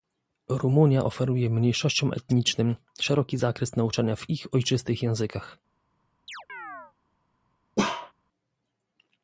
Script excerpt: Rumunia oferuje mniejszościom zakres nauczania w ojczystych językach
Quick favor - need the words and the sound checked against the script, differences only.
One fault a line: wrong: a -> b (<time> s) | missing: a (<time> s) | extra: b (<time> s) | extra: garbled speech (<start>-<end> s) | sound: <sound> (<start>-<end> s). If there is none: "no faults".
extra: etnicznym szeroki (2.1 s)
extra: ich (4.3 s)
sound: chirp (6.3-6.9 s)
sound: bark (7.8-8.1 s)